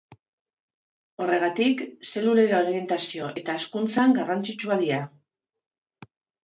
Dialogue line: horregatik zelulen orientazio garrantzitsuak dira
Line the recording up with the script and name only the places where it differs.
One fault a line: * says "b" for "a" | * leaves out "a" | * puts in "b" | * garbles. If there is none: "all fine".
* puts in "eta hazkuntzan"